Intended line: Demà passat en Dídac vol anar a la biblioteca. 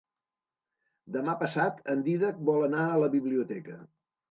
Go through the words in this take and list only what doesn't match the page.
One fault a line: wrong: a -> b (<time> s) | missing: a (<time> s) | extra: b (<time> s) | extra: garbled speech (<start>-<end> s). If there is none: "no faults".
no faults